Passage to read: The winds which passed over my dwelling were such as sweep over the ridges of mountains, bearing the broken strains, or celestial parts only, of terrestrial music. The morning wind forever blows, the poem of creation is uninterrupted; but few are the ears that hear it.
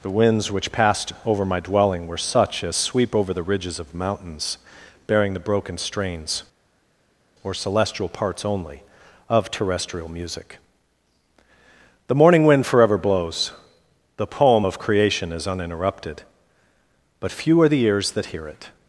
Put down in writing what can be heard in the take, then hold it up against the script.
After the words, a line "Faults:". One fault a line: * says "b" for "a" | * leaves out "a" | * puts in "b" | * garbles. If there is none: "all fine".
The winds which passed over my dwelling were such as sweep over the ridges of mountains, bearing the broken strains, or celestial parts only, of terrestrial music. The morning wind forever blows, the poem of creation is uninterrupted; but few are the ears that hear it.
Faults:
all fine